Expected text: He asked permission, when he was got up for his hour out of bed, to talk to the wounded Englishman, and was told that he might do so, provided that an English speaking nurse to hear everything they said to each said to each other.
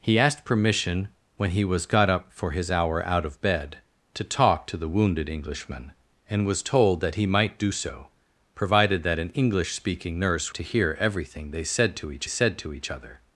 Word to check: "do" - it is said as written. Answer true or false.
true